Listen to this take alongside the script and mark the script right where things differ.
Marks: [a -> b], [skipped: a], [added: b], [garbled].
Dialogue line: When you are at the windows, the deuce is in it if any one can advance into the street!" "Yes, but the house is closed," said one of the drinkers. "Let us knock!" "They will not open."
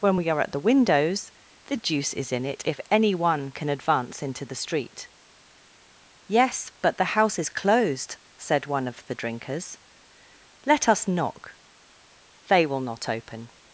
When [you -> we] are at the windows, the deuce is in it if any one can advance into the street!" "Yes, but the house is closed," said one of the drinkers. "Let us knock!" "They will not open."